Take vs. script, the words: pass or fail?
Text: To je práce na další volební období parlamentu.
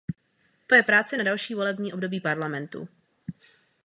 pass